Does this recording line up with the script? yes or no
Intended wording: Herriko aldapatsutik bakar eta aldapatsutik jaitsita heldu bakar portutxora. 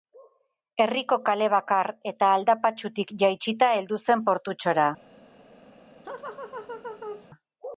no